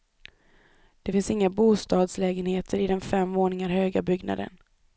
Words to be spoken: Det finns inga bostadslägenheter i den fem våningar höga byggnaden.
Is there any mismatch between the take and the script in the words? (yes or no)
no